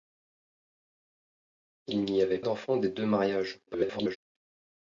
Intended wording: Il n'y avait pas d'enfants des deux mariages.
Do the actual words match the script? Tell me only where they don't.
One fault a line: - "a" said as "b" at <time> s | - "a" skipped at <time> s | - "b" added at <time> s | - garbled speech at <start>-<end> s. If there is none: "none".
- "pas" skipped at 2.4 s
- garbled speech at 3.7-4.2 s